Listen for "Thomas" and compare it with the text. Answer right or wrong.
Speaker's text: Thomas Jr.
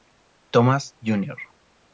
right